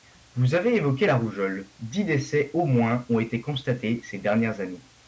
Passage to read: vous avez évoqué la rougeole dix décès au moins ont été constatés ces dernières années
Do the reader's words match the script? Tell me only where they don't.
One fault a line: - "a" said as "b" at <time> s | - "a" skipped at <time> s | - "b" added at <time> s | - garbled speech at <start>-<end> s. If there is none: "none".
none